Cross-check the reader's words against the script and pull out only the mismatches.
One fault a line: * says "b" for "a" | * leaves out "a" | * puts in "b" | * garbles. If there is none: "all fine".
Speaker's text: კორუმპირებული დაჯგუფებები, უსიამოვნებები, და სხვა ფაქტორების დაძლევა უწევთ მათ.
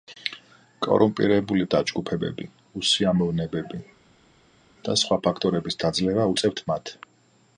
all fine